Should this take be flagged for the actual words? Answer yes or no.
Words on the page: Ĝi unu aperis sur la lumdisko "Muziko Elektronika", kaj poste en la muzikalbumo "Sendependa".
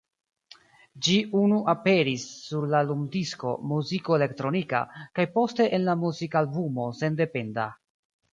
no